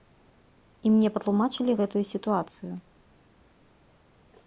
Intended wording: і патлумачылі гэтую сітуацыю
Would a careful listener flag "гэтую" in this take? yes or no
no